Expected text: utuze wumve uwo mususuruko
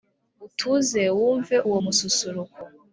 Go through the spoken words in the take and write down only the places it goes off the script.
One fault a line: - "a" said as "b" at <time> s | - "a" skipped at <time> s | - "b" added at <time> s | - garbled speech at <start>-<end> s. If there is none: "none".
none